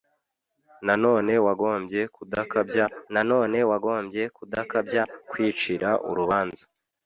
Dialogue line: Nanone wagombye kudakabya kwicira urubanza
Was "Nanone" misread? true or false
false